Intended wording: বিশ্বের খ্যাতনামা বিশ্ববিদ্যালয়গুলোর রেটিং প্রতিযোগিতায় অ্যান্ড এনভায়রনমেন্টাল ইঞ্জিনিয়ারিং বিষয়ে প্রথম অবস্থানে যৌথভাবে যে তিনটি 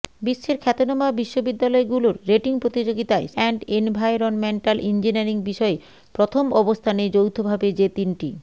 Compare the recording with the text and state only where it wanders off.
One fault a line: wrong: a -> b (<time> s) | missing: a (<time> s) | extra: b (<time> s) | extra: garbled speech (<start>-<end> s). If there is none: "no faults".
no faults